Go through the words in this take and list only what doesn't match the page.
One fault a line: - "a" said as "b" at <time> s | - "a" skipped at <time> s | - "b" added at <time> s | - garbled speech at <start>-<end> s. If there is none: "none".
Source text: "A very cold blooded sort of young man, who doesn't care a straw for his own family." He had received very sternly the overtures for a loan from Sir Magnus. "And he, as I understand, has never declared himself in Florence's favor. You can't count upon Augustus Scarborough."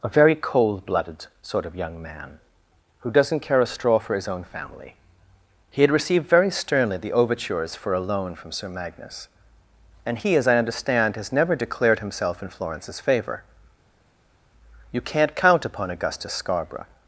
none